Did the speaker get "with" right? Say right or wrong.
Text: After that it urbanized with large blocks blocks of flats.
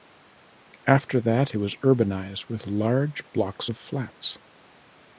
right